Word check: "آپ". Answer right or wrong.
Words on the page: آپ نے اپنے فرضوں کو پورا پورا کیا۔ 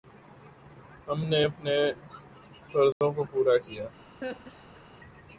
wrong